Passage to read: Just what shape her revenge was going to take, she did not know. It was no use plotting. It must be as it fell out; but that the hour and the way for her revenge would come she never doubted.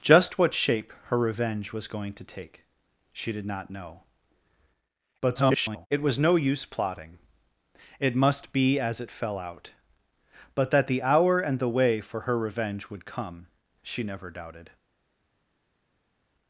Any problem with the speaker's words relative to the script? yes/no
yes